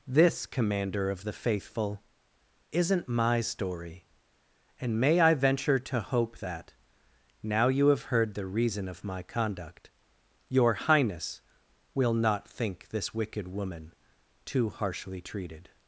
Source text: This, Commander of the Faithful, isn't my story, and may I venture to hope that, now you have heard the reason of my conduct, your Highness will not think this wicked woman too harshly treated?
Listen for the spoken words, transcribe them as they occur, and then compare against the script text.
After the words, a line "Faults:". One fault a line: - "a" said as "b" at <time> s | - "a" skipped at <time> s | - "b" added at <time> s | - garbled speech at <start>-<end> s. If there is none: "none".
This, Commander of the Faithful, isn't my story, and may I venture to hope that, now you have heard the reason of my conduct, your Highness will not think this wicked woman too harshly treated?
Faults:
none